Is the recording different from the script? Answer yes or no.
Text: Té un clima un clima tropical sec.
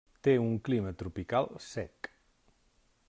yes